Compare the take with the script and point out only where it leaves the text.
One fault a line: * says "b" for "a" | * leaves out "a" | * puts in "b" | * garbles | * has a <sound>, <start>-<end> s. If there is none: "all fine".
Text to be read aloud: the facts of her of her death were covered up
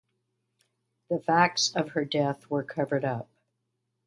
* leaves out "of her"